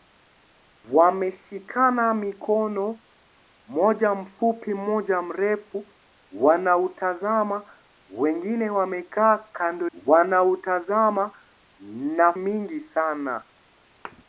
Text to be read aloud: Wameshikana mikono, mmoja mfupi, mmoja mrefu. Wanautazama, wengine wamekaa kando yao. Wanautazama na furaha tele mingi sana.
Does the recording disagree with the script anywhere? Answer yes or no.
yes